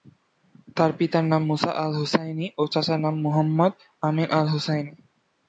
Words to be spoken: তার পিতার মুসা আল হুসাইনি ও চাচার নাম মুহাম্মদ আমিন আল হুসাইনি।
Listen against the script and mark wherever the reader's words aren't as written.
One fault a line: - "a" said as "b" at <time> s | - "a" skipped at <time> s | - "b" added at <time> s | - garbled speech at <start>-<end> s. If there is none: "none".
- "নাম" added at 1.2 s